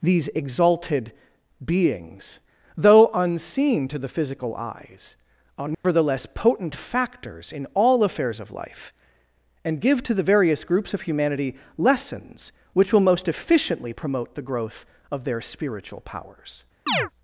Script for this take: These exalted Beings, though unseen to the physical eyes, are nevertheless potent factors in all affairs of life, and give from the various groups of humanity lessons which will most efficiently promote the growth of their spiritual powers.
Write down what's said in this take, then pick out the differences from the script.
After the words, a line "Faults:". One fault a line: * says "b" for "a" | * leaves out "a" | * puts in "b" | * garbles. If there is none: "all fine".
These exalted Beings, though unseen to the physical eyes, are nevertheless potent factors in all affairs of life, and give to the various groups of humanity lessons which will most efficiently promote the growth of their spiritual powers.
Faults:
* says "to" for "from"